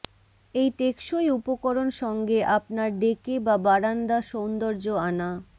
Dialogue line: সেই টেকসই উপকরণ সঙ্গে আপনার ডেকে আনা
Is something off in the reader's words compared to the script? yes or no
yes